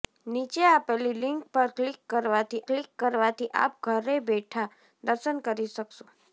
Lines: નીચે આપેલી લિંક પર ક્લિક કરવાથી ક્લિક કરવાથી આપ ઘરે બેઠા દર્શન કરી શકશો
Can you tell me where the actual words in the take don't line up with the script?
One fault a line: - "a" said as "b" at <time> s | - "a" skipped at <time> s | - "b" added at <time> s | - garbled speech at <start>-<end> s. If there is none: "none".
none